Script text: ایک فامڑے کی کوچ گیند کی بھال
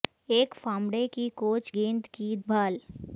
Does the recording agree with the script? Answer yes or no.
yes